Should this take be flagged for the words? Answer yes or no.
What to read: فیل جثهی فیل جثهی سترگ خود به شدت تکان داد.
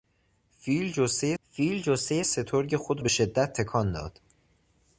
no